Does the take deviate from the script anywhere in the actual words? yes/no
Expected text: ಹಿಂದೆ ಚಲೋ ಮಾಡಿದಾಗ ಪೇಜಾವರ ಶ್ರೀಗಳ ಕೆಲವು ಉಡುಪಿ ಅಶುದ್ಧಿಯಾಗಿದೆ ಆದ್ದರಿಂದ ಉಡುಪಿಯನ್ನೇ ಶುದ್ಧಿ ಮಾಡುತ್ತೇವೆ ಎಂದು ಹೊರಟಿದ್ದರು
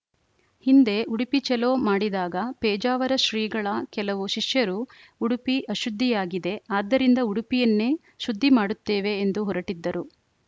yes